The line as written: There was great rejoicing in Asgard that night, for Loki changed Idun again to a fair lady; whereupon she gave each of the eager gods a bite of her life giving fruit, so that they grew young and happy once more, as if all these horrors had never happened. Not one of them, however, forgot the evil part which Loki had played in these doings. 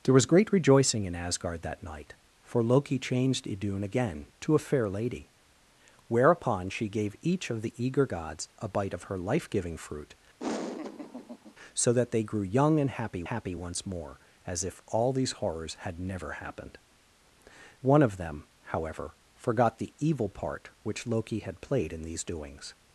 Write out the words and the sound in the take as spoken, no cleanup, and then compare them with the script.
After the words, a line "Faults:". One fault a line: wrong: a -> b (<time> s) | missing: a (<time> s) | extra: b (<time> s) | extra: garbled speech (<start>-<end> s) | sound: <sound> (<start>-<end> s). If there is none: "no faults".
There was great rejoicing in Asgard that night, for Loki changed Idun again to a fair lady; whereupon she gave each of the eager gods a bite of her life giving fruit, so that they grew young and happy happy once more, as if all these horrors had never happened. One of them, however, forgot the evil part which Loki had played in these doings.
Faults:
sound: laugh (10.4-11.6 s)
extra: happy (13.2 s)
missing: Not (16.8 s)